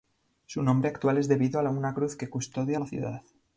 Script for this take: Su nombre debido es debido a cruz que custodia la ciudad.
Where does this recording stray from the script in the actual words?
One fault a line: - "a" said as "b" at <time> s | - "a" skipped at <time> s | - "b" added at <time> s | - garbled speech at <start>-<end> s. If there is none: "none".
- "debido" said as "actual" at 0.9 s
- "una" added at 1.7 s